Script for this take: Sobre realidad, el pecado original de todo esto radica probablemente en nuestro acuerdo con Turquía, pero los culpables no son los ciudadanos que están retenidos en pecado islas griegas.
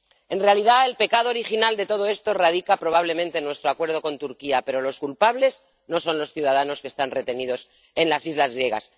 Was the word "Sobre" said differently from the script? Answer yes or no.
yes